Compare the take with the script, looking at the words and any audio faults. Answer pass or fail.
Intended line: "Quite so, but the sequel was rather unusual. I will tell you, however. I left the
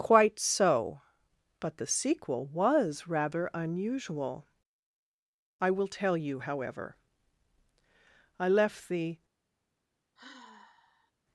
fail